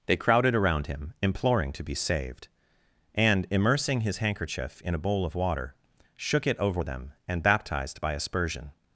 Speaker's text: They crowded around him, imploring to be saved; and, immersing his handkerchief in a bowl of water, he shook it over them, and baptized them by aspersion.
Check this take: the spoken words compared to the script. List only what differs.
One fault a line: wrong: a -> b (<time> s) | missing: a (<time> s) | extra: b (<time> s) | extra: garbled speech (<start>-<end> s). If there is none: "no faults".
missing: he (5.8 s)
missing: them (8.0 s)